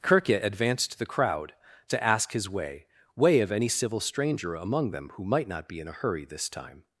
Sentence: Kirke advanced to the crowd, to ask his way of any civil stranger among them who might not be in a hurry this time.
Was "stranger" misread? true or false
false